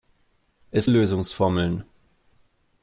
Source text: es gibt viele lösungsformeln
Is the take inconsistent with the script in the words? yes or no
yes